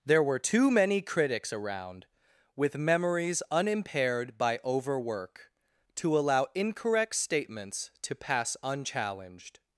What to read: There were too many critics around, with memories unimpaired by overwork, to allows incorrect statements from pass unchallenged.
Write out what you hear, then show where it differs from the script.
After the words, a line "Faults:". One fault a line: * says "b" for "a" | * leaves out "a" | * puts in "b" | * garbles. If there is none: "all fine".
There were too many critics around, with memories unimpaired by overwork, to allow incorrect statements to pass unchallenged.
Faults:
* says "allow" for "allows"
* says "to" for "from"